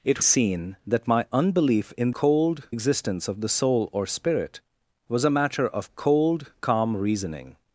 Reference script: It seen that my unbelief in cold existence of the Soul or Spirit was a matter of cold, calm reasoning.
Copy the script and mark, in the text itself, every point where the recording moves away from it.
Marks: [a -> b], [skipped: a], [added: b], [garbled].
It seen that my unbelief in cold existence of the Soul or Spirit was a matter of cold, calm reasoning.